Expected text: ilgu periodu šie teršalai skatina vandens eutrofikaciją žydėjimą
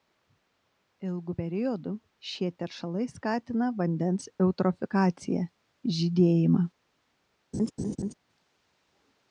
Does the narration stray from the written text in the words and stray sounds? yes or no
yes